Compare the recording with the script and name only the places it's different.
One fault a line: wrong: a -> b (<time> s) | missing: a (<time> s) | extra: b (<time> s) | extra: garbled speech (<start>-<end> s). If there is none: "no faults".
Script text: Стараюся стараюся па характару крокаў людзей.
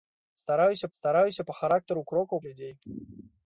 no faults